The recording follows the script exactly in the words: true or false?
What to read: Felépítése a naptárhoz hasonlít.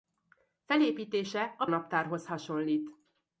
true